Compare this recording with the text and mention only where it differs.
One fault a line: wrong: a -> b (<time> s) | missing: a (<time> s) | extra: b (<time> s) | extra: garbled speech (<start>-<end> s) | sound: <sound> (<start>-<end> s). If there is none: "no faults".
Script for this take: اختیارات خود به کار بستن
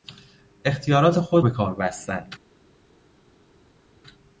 no faults